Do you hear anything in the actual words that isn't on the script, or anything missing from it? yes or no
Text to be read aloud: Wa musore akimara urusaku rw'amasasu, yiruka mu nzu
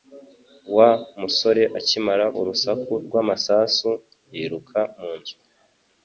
no